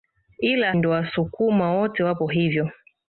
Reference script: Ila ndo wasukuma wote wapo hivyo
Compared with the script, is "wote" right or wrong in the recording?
right